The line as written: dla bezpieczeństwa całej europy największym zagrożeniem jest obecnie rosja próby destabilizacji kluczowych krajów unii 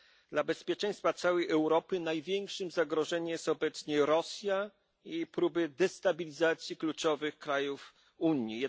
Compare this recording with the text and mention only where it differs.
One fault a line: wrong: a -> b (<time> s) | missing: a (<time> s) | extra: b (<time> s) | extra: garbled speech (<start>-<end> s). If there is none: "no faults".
extra: i (5.0 s)